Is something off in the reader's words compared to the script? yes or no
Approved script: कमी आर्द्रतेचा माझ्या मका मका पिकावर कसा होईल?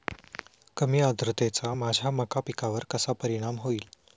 yes